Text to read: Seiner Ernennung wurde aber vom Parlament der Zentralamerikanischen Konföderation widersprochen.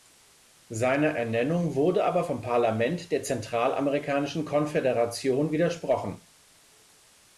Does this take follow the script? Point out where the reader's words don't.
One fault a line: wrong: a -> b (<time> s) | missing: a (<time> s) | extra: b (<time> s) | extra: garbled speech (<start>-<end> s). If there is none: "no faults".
no faults